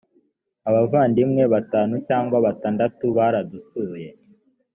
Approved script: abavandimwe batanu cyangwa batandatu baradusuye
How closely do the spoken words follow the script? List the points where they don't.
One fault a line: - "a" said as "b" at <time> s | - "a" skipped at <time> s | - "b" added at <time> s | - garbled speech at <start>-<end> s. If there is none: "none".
none